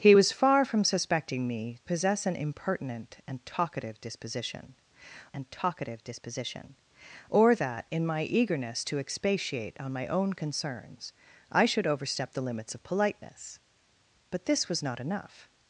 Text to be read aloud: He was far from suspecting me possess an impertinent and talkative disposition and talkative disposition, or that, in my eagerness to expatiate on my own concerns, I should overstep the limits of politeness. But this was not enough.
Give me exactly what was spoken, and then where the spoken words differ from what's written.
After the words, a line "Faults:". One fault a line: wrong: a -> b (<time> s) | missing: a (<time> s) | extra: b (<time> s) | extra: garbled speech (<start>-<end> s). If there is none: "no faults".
He was far from suspecting me possess an impertinent and talkative disposition and talkative disposition, or that, in my eagerness to expatiate on my own concerns, I should overstep the limits of politeness. But this was not enough.
Faults:
no faults